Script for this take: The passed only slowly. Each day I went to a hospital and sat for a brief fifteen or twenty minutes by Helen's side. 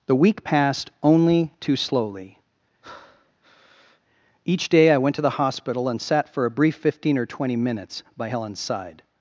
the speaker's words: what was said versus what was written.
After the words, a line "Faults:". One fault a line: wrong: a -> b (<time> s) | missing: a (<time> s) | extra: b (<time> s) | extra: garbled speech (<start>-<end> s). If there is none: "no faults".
The week passed only too slowly. Each day I went to the hospital and sat for a brief fifteen or twenty minutes by Helen's side.
Faults:
extra: week (0.1 s)
extra: too (1.6 s)
wrong: a -> the (5.2 s)